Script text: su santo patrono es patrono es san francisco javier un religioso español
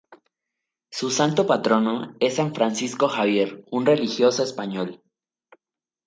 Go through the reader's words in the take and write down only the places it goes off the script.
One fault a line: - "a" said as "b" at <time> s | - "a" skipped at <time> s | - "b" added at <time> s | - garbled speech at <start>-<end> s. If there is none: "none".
- "patrono es" skipped at 2.4 s